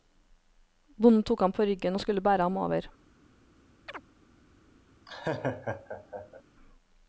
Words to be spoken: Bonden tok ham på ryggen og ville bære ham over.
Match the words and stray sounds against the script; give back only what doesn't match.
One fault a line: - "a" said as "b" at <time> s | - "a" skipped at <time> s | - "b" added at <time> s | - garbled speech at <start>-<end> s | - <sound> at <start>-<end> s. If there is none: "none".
- "ville" said as "skulle" at 2.0 s
- chirp at 3.9-4.0 s
- laugh at 5.1-6.4 s